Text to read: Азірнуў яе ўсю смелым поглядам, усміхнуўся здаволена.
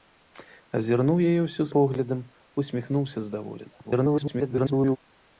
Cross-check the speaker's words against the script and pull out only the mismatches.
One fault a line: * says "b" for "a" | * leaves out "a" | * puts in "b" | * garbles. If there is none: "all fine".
* leaves out "смелым"
* garbles